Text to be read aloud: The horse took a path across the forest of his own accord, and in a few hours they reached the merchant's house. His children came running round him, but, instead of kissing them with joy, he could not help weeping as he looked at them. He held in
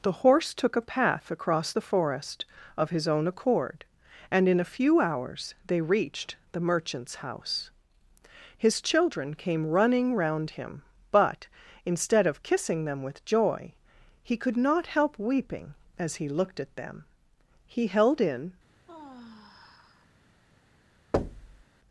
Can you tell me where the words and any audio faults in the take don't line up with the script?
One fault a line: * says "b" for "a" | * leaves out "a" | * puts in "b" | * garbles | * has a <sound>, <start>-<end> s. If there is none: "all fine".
* has a sigh, 18.9-20.1 s
* has a thud, 21.1-21.6 s